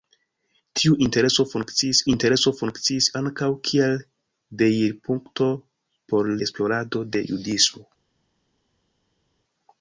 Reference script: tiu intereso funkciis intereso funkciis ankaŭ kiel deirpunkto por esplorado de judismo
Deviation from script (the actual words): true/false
false